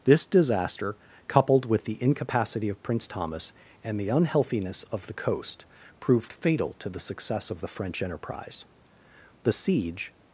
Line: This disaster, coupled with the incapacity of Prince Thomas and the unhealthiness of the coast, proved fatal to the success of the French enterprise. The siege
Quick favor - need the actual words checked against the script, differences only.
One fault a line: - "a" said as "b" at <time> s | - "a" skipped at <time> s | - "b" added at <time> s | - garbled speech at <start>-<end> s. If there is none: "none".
none